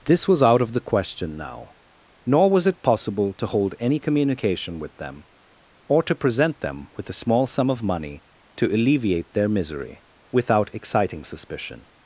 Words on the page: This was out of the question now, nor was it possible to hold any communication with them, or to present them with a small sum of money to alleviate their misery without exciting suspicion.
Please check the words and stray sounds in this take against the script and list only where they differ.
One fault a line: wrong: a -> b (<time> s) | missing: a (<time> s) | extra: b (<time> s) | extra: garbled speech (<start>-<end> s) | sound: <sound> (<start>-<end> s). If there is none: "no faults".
no faults